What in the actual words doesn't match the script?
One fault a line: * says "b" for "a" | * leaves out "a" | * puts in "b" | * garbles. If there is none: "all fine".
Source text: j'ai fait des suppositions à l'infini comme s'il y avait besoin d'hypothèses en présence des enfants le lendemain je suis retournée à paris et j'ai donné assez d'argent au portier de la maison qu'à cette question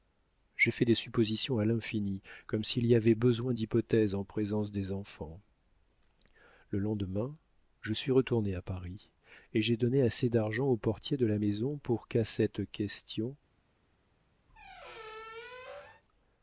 * puts in "pour"